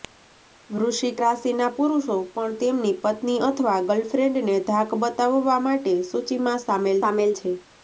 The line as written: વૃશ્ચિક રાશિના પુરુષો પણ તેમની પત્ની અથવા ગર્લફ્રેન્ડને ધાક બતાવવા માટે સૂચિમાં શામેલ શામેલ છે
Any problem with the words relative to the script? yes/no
no